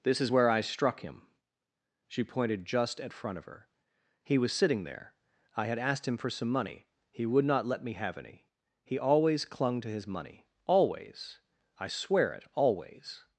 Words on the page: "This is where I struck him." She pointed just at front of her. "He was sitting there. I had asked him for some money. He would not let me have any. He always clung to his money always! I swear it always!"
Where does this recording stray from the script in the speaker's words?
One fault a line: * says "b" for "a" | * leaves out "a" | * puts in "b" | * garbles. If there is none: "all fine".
all fine